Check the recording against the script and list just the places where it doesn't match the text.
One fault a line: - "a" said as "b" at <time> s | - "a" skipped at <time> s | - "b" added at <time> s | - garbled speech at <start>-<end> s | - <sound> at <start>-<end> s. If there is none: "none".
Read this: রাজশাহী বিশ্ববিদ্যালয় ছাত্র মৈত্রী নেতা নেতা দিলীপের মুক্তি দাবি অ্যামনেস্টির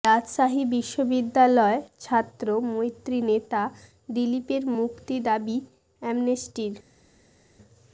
- "নেতা" skipped at 3.6 s